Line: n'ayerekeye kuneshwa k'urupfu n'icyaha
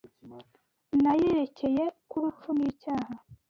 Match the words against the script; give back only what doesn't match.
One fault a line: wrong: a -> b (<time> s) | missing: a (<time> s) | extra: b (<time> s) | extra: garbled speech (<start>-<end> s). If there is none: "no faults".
missing: kuneshwa (1.8 s)